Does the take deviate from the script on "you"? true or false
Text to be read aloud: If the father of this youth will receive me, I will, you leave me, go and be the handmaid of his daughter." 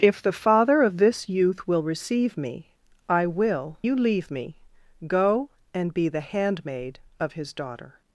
false